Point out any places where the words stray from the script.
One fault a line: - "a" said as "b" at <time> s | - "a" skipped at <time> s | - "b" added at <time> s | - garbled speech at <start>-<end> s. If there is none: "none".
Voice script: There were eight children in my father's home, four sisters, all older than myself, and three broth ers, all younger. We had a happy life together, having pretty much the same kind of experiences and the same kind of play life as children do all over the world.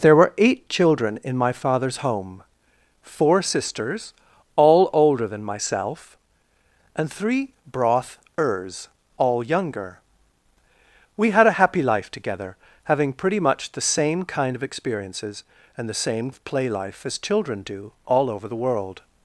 - "kind" skipped at 16.3 s